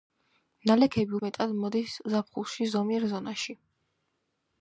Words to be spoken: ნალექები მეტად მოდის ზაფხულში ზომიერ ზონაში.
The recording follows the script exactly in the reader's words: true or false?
true